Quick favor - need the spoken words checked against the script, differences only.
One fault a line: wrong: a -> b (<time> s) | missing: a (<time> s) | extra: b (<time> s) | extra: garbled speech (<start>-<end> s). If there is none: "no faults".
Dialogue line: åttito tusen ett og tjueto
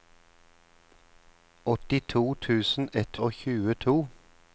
no faults